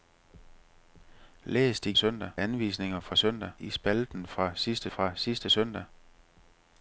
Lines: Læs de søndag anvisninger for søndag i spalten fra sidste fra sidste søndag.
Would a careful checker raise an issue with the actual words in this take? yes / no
no